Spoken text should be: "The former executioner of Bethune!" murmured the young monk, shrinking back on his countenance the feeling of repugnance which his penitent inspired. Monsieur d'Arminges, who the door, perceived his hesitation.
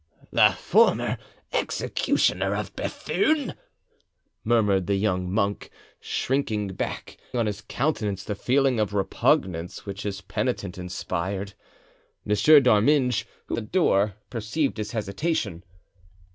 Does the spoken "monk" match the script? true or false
true